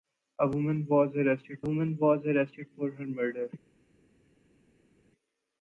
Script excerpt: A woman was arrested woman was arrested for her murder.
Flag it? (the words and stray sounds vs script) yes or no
no